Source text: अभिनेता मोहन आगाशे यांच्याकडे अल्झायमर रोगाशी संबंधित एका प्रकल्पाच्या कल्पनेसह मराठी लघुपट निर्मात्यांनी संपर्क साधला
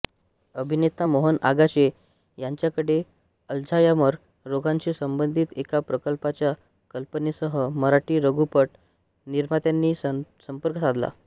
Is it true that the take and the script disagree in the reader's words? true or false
false